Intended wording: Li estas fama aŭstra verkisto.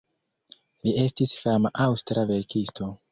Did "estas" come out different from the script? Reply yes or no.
yes